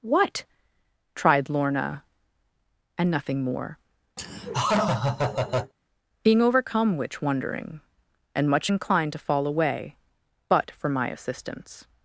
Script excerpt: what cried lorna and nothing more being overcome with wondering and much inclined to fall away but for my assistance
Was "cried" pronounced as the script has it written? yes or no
no